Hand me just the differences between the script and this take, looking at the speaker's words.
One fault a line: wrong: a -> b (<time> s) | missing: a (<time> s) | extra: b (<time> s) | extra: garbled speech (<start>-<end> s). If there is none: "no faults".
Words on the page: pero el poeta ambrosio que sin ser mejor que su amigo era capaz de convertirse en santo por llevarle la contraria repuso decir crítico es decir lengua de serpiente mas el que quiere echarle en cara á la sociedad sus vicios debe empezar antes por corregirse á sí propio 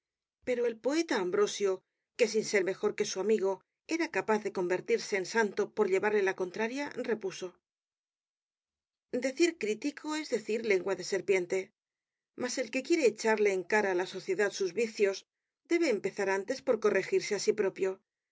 no faults